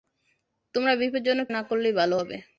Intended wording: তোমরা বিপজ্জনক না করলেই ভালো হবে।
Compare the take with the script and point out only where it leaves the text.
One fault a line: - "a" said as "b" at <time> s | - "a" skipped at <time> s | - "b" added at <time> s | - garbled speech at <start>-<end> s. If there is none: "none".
none